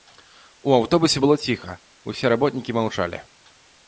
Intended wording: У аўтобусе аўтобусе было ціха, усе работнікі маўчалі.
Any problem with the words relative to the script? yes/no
yes